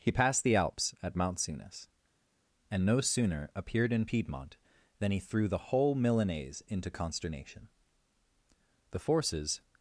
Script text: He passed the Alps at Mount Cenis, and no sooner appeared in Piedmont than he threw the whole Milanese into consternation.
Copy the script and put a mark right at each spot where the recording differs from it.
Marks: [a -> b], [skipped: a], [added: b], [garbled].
He passed the Alps at Mount Cenis, and no sooner appeared in Piedmont than he threw the whole Milanese into consternation. [added: The forces]